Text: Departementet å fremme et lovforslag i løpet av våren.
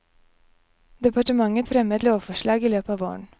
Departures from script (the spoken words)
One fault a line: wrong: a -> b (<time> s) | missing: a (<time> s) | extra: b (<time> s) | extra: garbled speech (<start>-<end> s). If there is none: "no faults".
no faults